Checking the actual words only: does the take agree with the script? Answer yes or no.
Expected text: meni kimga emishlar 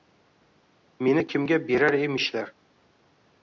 no